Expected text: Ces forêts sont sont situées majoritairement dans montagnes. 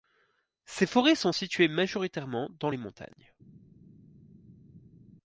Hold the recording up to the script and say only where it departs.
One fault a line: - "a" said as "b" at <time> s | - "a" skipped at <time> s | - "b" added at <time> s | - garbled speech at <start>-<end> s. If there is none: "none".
- "sont" skipped at 1.3 s
- "les" added at 2.7 s